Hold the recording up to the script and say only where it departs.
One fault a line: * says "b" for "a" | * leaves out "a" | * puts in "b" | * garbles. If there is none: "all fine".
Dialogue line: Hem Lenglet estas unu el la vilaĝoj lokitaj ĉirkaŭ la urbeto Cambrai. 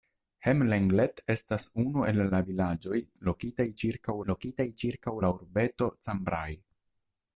* puts in "lokitaj ĉirkaŭ"